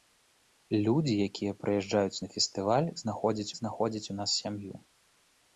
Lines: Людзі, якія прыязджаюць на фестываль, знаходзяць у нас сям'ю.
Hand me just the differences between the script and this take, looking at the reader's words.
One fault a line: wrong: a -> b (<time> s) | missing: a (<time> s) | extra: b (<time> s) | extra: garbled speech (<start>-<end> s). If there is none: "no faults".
extra: знаходзяць (3.6 s)